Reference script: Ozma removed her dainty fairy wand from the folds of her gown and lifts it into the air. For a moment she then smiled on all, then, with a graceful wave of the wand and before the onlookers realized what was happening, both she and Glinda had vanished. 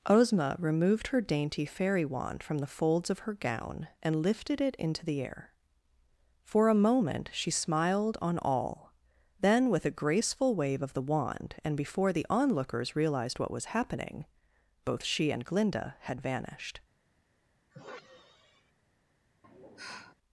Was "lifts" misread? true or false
true